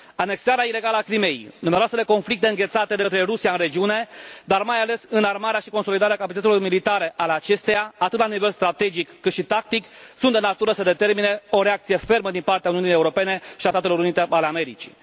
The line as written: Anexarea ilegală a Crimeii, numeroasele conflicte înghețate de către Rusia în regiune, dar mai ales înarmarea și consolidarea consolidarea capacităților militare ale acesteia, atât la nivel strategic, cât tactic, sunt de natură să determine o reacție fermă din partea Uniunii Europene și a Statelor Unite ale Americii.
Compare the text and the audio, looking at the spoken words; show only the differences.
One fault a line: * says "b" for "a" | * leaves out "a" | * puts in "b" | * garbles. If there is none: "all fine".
* leaves out "consolidarea"
* puts in "și"